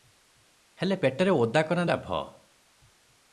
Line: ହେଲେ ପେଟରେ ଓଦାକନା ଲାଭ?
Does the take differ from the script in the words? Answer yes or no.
no